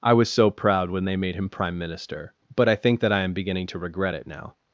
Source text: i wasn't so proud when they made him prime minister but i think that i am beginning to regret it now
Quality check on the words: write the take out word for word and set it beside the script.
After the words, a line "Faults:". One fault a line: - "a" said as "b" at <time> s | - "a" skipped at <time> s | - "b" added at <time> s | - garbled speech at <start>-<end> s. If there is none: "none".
i was so proud when they made him prime minister but i think that i am beginning to regret it now
Faults:
- "wasn't" said as "was" at 0.1 s